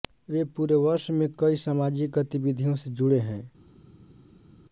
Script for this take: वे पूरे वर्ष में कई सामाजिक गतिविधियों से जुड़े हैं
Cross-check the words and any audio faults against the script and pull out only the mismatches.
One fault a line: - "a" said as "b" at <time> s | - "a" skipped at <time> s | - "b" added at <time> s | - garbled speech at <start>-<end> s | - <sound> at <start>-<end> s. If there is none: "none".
none